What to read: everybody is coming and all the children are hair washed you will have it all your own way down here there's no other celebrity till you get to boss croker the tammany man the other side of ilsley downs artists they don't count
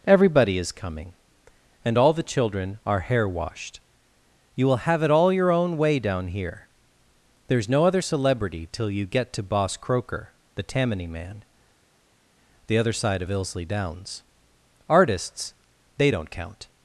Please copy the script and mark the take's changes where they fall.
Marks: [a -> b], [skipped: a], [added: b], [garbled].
everybody is coming and all the children are hair washed you will have it all your own way down here there's no other celebrity till you get to boss croker the tammany man the other side of ilsley downs artists they don't count